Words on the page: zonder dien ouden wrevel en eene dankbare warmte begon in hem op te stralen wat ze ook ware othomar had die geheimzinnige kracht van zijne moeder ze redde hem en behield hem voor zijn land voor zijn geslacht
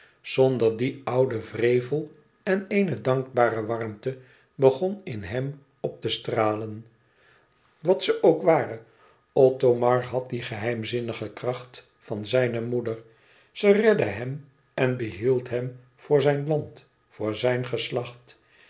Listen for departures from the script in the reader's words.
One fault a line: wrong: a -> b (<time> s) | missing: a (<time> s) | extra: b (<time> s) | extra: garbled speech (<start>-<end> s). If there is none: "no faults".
no faults